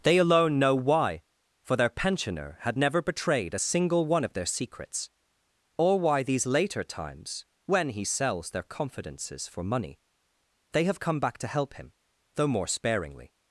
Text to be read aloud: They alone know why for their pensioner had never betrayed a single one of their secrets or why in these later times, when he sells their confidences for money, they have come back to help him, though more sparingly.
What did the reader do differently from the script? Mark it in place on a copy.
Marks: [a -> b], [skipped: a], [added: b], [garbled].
They alone know why for their pensioner had never betrayed a single one of their secrets or why [skipped: in] these later times, when he sells their confidences for money, they have come back to help him, though more sparingly.